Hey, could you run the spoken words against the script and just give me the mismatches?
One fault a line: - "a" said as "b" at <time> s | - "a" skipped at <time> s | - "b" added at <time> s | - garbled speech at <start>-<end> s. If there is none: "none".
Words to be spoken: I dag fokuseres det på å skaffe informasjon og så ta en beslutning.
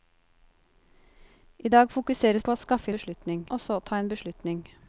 - "det" skipped at 2.4 s
- "informasjon" said as "beslutning" at 2.9 s